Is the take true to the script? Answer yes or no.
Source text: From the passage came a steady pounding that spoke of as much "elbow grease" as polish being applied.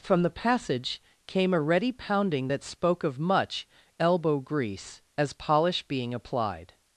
no